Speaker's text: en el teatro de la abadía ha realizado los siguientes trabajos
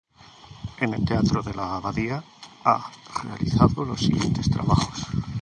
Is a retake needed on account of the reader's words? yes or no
no